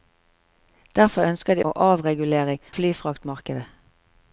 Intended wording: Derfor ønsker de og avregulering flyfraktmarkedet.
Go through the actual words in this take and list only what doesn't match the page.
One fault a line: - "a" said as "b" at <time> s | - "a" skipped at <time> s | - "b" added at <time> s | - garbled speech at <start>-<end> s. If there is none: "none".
none